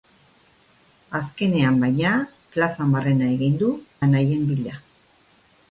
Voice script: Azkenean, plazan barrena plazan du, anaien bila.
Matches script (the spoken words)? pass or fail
fail